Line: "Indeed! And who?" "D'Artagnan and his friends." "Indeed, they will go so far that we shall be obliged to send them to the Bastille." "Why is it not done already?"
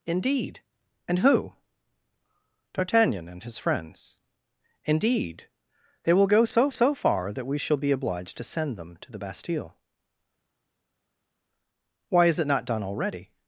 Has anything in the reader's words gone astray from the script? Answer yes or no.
yes